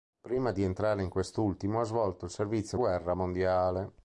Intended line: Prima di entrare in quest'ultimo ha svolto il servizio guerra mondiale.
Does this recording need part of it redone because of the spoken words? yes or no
no